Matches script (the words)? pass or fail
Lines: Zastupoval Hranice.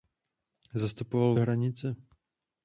pass